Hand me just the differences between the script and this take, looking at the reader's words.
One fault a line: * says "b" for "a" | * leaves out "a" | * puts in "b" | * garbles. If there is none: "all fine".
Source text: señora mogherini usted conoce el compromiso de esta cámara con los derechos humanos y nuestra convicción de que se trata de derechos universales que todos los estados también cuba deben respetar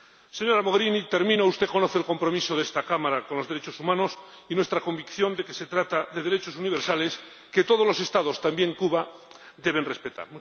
all fine